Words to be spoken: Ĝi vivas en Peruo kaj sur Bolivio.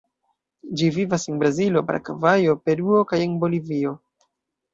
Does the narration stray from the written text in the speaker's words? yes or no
yes